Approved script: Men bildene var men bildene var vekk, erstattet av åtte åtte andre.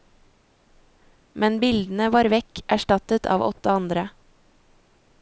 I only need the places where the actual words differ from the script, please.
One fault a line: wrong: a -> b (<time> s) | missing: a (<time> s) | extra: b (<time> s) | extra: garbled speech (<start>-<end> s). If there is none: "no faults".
missing: men bildene var (2.3 s)
missing: åtte (3.7 s)